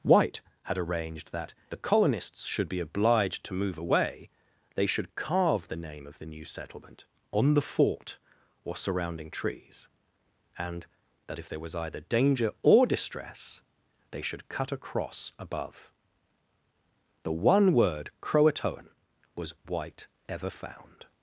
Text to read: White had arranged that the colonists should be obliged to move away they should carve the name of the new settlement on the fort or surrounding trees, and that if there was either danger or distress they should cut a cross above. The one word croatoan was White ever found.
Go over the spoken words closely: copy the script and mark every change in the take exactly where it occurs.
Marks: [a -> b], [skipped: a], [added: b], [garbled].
White had arranged that the colonists should be obliged to move away they should carve the name of the new settlement on the fort or surrounding trees, and that if there was either danger or distress they should cut a cross above. The one word croatoan was White ever found.